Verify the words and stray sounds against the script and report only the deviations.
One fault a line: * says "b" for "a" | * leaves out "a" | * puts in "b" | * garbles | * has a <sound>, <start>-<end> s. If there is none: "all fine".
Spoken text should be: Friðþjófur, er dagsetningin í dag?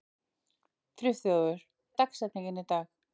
all fine